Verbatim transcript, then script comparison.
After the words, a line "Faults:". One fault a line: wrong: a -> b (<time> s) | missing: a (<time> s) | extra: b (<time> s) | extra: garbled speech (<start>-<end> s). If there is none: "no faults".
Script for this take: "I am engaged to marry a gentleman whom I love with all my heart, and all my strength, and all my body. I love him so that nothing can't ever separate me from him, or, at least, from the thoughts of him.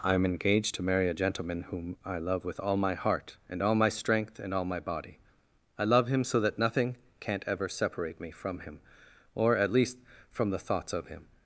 "I am engaged to marry a gentleman whom I love with all my heart, and all my strength, and all my body. I love him so that nothing can't ever separate me from him, or, at least, from the thoughts of him.
Faults:
no faults